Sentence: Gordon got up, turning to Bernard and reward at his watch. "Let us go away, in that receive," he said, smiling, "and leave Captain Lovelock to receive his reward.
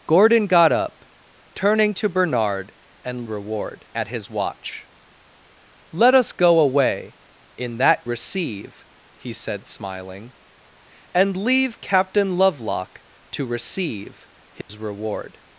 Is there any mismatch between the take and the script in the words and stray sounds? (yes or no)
yes